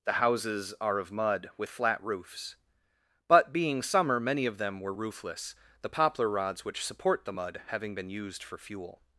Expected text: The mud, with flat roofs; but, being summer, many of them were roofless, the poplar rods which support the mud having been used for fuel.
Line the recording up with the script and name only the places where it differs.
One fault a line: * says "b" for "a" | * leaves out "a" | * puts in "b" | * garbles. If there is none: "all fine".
* puts in "houses are of"